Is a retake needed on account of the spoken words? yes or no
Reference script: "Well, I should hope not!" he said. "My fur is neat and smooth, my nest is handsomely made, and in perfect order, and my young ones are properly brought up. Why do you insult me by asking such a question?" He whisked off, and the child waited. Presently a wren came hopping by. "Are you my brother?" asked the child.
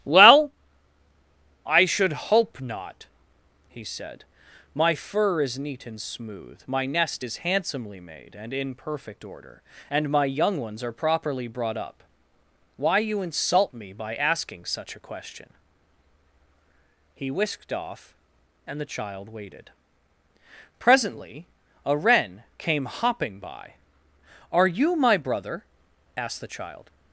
yes